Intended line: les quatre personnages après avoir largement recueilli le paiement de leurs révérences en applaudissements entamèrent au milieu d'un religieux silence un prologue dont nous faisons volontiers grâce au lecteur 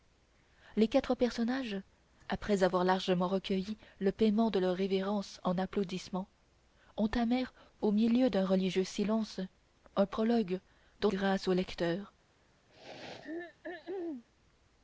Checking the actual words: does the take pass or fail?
fail